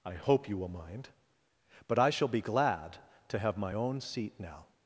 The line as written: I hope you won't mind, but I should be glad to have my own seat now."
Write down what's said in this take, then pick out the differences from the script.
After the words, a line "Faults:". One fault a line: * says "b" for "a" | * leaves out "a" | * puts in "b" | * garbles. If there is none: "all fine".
I hope you will mind, but I shall be glad to have my own seat now."
Faults:
* says "will" for "won't"
* says "shall" for "should"